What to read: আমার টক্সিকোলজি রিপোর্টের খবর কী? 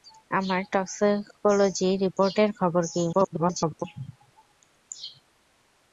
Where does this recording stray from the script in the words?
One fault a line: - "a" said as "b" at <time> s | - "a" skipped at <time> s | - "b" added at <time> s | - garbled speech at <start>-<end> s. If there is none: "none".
- garbled speech at 3.1-3.8 s